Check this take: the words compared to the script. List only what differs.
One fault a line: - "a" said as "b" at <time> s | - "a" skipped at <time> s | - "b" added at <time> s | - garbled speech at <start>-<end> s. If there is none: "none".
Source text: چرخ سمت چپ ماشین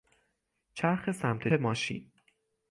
- "چپ" skipped at 1.5 s